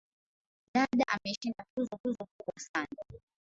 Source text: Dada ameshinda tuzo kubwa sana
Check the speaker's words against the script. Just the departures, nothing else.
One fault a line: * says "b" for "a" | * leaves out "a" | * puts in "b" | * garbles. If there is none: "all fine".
* puts in "tuzo"